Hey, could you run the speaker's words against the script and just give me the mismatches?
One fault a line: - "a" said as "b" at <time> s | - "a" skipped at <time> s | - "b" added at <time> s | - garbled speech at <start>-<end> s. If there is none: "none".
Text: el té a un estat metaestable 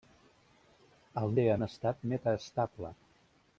none